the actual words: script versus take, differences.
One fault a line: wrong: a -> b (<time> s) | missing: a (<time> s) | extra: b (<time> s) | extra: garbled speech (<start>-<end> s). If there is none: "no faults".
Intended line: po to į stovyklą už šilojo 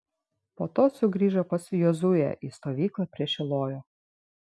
extra: sugrįžo pas jozuę (1.0 s)
wrong: už -> prie (3.2 s)